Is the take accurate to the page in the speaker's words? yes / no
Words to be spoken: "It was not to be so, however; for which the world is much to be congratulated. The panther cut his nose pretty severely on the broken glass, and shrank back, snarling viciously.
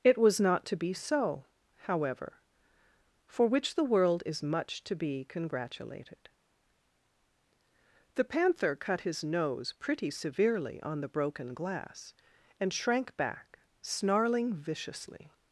yes